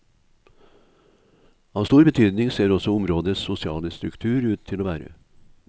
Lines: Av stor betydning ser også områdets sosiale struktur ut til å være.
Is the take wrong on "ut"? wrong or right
right